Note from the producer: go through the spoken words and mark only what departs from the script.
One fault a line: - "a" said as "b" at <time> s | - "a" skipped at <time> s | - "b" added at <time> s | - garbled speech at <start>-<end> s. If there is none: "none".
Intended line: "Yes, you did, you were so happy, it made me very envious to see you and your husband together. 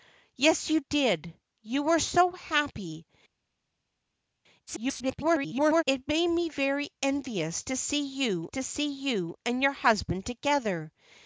- garbled speech at 4.7-5.8 s
- "to see you" added at 8.5 s